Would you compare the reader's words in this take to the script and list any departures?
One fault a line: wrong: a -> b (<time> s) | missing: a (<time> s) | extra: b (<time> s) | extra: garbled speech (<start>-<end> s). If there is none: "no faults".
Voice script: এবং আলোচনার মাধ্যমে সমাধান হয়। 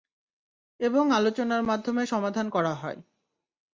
extra: করা (2.5 s)